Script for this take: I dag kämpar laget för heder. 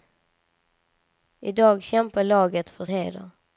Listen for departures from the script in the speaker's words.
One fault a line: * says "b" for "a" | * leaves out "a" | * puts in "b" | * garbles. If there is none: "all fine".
all fine